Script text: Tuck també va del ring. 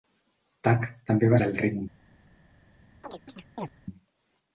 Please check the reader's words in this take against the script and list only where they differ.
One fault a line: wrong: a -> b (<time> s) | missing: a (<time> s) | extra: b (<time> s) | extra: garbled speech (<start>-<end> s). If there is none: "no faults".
no faults